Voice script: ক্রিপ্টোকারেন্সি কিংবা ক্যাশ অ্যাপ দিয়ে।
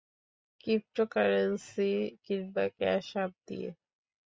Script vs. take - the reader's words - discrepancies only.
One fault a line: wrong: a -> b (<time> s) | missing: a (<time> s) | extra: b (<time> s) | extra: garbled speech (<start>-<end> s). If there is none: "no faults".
no faults